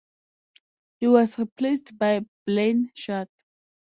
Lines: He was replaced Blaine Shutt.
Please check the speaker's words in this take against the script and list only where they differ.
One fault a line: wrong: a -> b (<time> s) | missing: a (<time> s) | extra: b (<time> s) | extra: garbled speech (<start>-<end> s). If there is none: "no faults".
extra: by (2.0 s)